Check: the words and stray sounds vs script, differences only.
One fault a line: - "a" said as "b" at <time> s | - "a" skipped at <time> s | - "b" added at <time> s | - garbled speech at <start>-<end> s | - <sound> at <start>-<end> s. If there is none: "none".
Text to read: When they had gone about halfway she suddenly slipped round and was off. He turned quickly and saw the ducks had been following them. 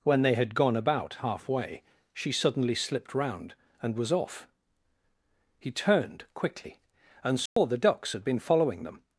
- dropout at 7.5-7.6 s